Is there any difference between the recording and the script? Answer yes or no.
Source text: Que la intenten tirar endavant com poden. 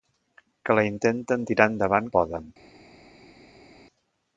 yes